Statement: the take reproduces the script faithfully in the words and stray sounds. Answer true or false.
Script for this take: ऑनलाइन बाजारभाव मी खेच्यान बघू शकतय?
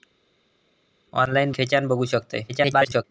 false